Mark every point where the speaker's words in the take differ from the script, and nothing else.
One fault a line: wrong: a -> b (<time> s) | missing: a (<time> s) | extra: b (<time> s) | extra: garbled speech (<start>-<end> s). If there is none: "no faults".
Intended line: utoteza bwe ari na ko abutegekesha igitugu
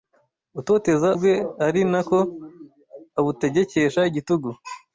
no faults